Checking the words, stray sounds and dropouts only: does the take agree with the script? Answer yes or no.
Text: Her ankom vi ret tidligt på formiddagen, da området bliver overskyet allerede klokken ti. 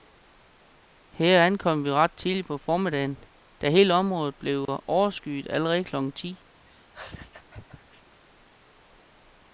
no